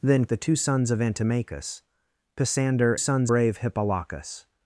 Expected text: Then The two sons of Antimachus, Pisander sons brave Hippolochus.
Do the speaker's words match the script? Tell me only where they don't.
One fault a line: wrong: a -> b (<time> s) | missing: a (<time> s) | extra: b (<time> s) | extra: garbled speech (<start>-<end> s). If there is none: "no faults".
no faults